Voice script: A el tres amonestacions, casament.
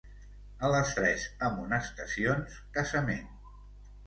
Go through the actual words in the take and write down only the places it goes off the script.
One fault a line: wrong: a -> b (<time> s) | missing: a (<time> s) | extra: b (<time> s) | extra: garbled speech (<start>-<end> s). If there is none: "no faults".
wrong: el -> les (0.8 s)